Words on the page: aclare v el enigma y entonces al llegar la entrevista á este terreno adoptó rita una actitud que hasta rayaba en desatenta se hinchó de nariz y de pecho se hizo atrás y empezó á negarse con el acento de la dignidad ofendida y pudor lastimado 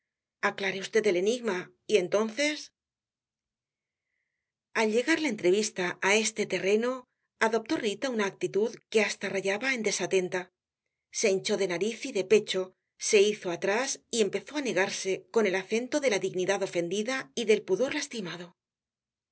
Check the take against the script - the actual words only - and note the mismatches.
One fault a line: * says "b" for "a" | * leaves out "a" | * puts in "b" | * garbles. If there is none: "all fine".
* puts in "del"